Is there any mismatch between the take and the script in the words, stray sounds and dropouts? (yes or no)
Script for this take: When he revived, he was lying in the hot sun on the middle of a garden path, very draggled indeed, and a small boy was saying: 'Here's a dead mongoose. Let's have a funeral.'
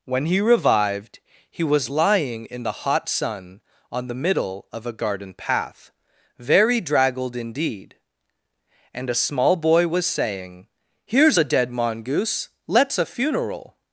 yes